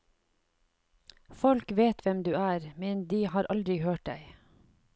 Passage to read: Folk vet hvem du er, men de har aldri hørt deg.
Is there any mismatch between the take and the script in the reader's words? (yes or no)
no